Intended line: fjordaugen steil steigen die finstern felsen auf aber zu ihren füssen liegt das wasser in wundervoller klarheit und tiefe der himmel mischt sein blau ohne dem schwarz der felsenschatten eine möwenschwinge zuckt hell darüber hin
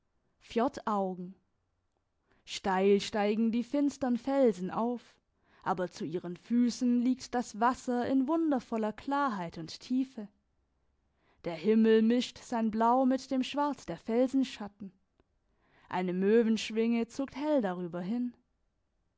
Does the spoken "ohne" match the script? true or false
false